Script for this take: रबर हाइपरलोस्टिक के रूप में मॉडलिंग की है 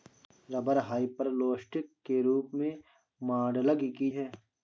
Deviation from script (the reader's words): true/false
false